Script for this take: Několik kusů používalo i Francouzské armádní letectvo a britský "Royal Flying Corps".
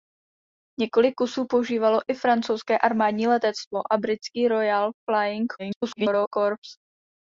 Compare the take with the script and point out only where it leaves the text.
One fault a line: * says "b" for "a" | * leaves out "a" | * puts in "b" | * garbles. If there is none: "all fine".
* garbles